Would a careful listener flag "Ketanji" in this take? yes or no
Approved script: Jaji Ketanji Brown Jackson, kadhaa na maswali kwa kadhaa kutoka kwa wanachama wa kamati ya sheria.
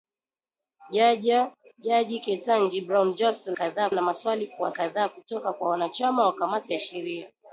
no